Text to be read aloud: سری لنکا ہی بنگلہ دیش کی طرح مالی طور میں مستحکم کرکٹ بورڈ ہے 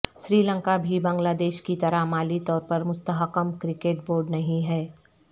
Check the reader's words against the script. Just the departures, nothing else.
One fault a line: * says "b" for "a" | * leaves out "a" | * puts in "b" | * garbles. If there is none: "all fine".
* says "بھی" for "ہی"
* says "پر" for "میں"
* puts in "نہیں"